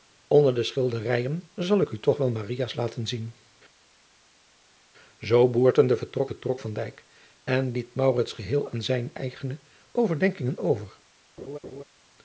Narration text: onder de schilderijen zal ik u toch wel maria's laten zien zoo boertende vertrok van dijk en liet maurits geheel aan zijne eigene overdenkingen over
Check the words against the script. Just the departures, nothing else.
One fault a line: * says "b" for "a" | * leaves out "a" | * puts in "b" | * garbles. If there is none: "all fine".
* puts in "vertrok"